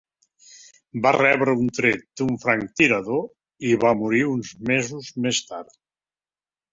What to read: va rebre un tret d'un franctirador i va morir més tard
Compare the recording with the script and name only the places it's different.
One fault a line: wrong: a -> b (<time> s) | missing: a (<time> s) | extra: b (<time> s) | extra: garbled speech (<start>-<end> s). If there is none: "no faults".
extra: uns mesos (4.3 s)